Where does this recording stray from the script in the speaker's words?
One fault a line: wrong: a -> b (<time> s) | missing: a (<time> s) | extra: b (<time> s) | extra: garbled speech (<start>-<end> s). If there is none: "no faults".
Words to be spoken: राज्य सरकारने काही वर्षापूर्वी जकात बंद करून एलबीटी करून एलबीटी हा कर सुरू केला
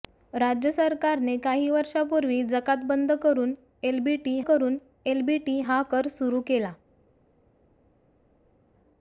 no faults